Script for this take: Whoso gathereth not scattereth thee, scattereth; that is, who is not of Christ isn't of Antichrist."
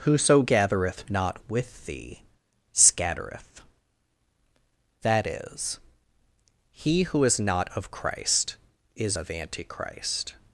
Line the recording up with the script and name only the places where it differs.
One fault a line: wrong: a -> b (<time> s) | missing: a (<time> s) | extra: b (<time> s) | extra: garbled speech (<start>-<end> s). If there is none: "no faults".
wrong: scattereth -> with (1.5 s)
extra: he (6.7 s)
wrong: isn't -> is (8.9 s)